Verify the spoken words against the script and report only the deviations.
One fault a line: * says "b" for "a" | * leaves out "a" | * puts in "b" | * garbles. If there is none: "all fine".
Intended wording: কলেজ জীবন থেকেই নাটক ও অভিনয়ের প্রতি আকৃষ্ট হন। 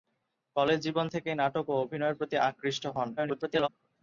* garbles